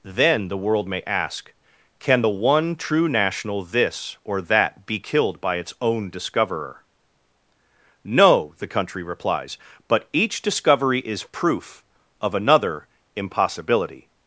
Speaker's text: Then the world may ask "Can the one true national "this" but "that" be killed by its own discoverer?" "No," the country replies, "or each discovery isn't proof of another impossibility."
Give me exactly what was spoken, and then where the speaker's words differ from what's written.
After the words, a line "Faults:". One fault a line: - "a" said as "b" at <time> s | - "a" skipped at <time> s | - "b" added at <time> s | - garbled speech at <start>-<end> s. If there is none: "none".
Then the world may ask "Can the one true national "this" or "that" be killed by its own discoverer?" "No," the country replies, "but each discovery is proof of another impossibility."
Faults:
- "but" said as "or" at 4.2 s
- "or" said as "but" at 9.9 s
- "isn't" said as "is" at 11.0 s